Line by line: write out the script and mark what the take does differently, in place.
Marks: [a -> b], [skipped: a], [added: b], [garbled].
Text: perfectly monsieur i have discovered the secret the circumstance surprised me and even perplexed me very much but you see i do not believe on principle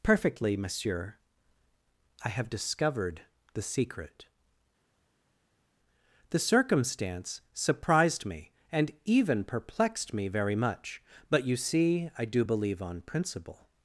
perfectly monsieur i have discovered the secret the circumstance surprised me and even perplexed me very much but you see i do [skipped: not] believe on principle